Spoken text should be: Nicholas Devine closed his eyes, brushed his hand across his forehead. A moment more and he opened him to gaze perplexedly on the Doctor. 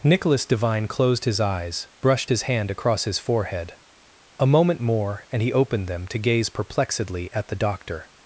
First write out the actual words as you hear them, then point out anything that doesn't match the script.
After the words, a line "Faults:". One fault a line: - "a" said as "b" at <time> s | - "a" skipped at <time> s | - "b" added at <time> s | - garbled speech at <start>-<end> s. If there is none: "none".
Nicholas Devine closed his eyes, brushed his hand across his forehead. A moment more and he opened them to gaze perplexedly at the Doctor.
Faults:
- "him" said as "them" at 5.9 s
- "on" said as "at" at 7.3 s